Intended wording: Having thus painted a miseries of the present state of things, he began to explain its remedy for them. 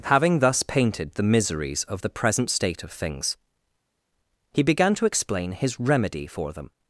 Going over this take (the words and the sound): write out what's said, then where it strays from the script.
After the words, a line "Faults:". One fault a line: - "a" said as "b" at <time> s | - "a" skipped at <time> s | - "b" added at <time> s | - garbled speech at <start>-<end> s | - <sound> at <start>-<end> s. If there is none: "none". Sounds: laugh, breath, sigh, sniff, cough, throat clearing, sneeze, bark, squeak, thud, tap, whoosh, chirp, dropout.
Having thus painted the miseries of the present state of things, he began to explain his remedy for them.
Faults:
- "a" said as "the" at 1.1 s
- "its" said as "his" at 5.5 s